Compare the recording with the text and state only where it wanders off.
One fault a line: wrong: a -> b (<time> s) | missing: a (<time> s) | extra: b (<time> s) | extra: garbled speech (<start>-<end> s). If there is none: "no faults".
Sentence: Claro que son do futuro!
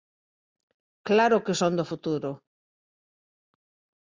no faults